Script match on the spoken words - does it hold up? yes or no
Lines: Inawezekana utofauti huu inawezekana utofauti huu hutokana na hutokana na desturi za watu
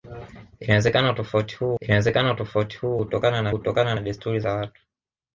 yes